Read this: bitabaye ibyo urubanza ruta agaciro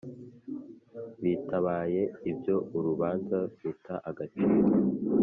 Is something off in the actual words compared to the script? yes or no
no